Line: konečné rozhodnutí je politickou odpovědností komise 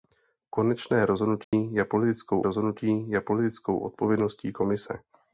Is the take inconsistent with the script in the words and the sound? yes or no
yes